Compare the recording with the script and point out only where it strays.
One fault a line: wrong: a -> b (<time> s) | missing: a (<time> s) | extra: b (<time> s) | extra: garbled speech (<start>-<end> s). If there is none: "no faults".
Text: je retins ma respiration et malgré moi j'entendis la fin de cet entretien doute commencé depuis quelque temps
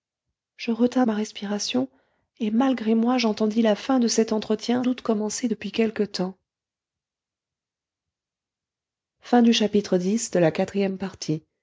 no faults